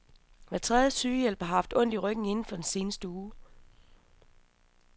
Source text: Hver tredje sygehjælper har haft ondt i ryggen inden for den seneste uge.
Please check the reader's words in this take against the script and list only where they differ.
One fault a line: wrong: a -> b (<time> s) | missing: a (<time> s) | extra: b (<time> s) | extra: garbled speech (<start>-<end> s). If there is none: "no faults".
no faults